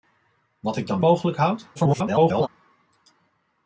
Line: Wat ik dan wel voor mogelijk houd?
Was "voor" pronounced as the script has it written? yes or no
no